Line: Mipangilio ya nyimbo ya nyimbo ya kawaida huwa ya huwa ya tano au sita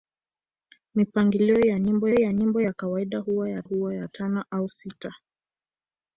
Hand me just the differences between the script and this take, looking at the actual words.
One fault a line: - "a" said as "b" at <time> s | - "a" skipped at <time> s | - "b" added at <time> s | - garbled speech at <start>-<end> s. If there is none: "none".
none